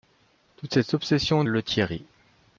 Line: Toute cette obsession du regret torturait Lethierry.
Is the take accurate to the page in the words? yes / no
no